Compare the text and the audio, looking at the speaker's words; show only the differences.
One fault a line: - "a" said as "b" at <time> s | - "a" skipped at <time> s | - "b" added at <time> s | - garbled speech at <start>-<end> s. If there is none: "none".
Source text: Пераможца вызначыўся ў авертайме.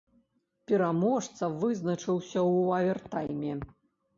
none